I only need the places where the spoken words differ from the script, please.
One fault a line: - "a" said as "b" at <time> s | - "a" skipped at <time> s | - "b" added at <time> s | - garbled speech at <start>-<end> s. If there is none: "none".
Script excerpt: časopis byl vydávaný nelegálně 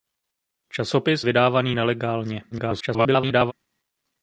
- "byl" skipped at 1.2 s
- garbled speech at 2.5-3.5 s